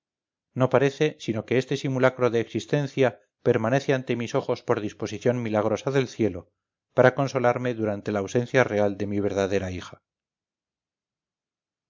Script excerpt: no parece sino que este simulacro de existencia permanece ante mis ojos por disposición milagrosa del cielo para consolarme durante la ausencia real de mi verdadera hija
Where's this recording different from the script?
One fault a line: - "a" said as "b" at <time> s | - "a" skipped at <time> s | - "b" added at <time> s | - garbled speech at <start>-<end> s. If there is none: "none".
none